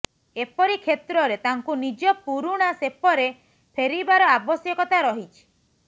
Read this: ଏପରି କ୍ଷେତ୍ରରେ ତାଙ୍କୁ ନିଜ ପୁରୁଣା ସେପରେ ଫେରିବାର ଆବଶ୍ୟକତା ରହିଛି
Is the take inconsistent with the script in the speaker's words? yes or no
no